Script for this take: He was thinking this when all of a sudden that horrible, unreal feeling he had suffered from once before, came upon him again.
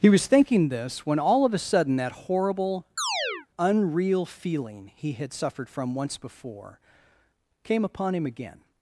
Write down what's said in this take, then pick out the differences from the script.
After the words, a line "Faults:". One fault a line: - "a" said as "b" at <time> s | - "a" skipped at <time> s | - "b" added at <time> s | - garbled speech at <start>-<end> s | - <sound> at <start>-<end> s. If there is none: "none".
He was thinking this when all of a sudden that horrible, unreal feeling he had suffered from once before, came upon him again.
Faults:
- chirp at 3.0-3.5 s